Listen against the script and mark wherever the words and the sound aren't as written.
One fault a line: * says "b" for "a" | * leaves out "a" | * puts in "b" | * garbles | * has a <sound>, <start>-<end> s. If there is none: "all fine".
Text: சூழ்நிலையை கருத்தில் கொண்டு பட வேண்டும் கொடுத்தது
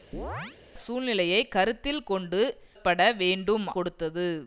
* has a chirp, 0.1-0.6 s